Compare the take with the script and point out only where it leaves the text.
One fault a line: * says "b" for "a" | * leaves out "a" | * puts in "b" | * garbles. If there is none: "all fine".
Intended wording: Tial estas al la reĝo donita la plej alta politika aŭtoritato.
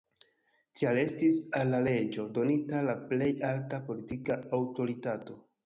* says "estis" for "estas"